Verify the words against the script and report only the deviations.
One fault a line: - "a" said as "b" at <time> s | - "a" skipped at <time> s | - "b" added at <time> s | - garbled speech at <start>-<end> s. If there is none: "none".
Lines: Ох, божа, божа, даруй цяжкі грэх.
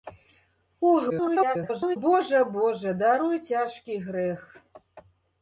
- garbled speech at 1.1-2.0 s